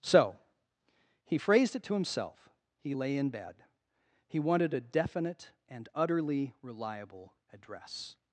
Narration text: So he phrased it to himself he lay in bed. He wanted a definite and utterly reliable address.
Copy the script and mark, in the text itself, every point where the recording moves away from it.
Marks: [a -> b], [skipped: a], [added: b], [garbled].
So he phrased it to himself he lay in bed. He wanted a definite and utterly reliable address.